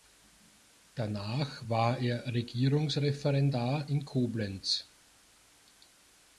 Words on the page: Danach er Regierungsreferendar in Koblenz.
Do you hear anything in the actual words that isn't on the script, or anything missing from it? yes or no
yes